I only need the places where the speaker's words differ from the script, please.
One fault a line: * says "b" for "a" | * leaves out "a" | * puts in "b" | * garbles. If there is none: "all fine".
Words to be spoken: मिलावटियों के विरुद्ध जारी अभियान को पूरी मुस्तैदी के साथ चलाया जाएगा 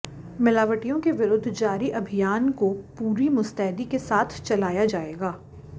all fine